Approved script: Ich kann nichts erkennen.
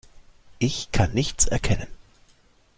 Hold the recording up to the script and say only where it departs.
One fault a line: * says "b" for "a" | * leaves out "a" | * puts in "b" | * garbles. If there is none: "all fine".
all fine